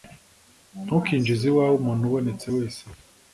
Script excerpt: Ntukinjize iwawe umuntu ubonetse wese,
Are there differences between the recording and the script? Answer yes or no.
no